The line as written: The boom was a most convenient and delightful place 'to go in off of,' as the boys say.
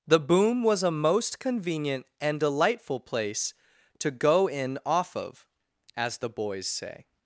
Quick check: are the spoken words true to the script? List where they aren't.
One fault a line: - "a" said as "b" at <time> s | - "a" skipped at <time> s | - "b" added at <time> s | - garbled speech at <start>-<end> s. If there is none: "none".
none